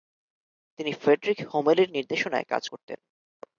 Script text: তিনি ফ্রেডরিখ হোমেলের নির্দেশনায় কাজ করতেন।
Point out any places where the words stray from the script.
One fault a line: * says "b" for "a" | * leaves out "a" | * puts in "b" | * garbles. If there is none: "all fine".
all fine